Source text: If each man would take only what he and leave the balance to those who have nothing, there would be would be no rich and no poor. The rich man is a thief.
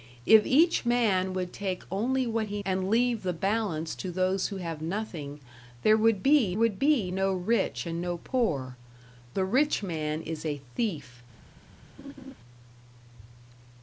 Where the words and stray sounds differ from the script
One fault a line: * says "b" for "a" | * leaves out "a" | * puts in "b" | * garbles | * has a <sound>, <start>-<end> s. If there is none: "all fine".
* has a laugh, 12.0-12.3 s